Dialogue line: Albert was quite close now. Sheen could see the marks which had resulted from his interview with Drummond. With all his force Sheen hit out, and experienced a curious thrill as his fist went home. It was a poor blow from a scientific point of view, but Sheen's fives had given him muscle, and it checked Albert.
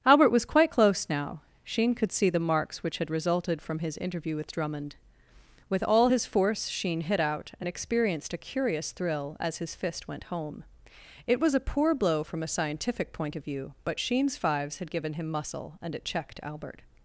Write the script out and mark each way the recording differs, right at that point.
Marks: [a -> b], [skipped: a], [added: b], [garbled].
Albert was quite close now. Sheen could see the marks which had resulted from his interview with Drummond. With all his force Sheen hit out, and experienced a curious thrill as his fist went home. It was a poor blow from a scientific point of view, but Sheen's fives had given him muscle, and it checked Albert.